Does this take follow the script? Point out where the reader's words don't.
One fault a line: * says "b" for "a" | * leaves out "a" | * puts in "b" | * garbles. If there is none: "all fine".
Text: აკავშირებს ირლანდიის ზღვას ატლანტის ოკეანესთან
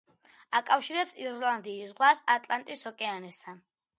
all fine